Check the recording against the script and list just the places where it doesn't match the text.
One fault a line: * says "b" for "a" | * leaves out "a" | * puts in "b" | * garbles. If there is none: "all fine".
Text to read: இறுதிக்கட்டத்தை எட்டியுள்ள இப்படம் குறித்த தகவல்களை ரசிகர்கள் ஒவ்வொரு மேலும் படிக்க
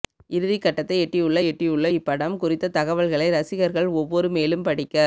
* puts in "எட்டியுள்ள"